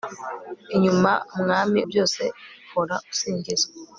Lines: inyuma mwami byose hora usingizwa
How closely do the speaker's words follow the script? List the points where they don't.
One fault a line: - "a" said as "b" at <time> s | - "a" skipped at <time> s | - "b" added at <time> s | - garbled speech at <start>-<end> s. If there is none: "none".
none